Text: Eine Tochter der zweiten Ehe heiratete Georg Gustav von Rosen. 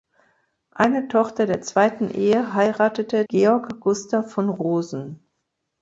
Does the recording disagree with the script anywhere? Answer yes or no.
no